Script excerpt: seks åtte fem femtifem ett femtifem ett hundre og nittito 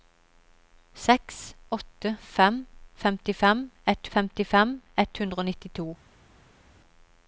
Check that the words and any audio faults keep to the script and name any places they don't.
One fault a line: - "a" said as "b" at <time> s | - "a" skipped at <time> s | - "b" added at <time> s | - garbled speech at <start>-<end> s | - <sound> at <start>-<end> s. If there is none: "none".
none